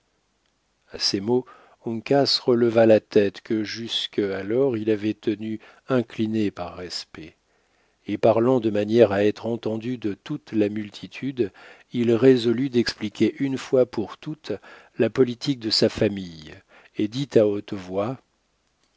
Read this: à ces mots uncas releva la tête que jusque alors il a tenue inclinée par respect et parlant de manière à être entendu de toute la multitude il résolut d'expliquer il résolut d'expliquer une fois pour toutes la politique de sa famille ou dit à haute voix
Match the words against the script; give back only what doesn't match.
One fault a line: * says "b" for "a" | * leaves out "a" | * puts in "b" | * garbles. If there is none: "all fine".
* says "avait" for "a"
* leaves out "il résolut d'expliquer"
* says "et" for "ou"